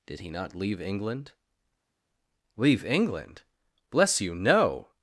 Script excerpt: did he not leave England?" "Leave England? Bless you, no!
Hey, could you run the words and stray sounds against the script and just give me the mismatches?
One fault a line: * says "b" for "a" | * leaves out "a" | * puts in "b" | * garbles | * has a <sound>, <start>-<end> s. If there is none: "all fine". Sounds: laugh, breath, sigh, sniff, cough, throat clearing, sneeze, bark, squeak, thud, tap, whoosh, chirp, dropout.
all fine